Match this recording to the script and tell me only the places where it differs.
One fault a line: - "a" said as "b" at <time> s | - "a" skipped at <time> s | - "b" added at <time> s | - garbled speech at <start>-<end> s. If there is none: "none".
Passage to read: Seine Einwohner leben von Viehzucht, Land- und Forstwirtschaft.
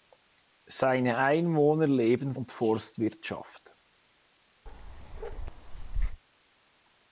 - "von Viehzucht Land" skipped at 2.3 s